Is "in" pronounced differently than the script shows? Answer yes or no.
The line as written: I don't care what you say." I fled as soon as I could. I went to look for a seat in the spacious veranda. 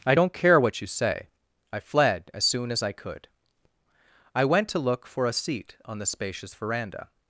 yes